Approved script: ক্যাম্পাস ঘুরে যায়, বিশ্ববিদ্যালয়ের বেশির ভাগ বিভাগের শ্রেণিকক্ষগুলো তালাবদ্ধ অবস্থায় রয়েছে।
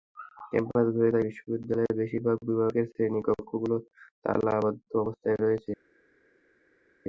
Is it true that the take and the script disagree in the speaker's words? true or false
false